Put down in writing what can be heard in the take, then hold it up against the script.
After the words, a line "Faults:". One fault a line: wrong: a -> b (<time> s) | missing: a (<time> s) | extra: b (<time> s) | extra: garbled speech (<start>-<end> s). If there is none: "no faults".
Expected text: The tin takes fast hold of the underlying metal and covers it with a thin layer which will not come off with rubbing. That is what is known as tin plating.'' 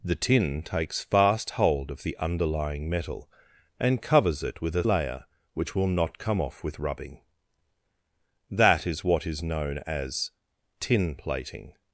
The tin takes fast hold of the underlying metal and covers it with a layer which will not come off with rubbing. That is what is known as tin plating.''
Faults:
missing: thin (4.8 s)